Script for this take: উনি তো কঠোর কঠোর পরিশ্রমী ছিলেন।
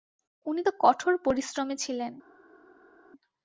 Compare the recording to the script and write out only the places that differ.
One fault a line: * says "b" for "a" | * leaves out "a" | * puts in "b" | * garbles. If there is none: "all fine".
* leaves out "কঠোর"